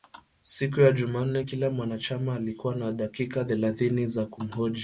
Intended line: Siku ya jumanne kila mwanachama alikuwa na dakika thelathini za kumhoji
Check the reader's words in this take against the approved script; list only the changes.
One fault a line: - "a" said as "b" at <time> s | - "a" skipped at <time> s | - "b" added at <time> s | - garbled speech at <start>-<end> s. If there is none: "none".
none